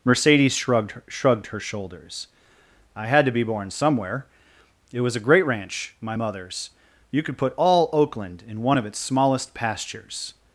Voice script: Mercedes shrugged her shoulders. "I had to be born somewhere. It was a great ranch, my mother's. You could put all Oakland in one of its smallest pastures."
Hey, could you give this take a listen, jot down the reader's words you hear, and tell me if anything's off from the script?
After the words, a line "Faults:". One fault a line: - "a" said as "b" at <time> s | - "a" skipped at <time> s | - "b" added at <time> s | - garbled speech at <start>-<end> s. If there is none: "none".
Mercedes shrugged shrugged her shoulders. "I had to be born somewhere. It was a great ranch, my mother's. You could put all Oakland in one of its smallest pastures."
Faults:
- "shrugged" added at 1.1 s